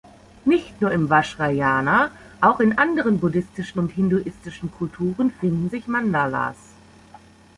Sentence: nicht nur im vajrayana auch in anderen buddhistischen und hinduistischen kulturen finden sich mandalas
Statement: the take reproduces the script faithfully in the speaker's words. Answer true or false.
true